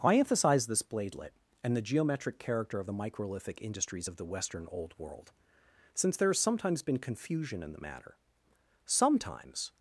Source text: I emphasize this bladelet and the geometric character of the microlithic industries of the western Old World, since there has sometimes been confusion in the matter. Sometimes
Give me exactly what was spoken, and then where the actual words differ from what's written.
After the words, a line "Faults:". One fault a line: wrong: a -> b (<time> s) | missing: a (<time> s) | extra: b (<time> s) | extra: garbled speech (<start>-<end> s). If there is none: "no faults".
I emphasize this bladelet and the geometric character of the microlithic industries of the western Old World, since there has sometimes been confusion in the matter. Sometimes
Faults:
no faults